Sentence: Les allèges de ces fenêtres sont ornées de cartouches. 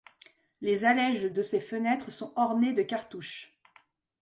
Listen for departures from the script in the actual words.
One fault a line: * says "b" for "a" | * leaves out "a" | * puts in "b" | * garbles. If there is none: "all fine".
all fine